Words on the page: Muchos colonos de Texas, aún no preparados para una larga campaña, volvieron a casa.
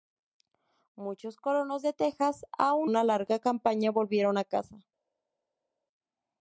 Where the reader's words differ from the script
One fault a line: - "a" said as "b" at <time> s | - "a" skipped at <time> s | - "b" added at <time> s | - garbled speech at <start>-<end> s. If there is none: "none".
- "no preparados para" skipped at 2.9 s